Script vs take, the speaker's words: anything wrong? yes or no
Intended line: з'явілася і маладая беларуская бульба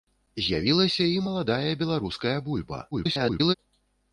yes